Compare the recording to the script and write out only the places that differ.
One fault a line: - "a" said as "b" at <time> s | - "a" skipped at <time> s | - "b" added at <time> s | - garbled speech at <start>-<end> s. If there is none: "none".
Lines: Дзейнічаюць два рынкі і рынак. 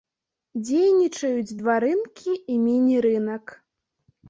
- "міні" added at 2.7 s